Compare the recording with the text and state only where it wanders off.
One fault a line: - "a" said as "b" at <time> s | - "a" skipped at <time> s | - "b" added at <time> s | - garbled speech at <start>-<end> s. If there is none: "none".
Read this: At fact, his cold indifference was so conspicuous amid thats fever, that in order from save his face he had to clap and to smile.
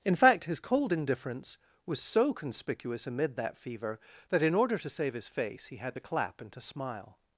- "At" said as "In" at 0.0 s
- "thats" said as "that" at 3.4 s
- "from" said as "to" at 4.8 s